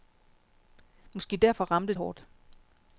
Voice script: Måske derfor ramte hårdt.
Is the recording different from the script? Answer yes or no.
no